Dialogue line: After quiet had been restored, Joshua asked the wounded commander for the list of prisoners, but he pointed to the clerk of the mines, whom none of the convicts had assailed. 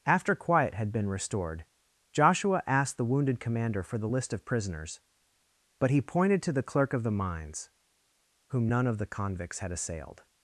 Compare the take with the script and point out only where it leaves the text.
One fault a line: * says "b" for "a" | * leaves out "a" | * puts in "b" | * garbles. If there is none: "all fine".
all fine